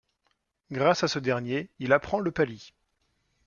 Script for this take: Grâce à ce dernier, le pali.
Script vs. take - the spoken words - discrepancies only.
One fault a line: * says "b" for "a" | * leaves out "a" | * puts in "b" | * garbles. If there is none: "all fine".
* puts in "il apprend"